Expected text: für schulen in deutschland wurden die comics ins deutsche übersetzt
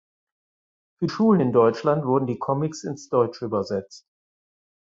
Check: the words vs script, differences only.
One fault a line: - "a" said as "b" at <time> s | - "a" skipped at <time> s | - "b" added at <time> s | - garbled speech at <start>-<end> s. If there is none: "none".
none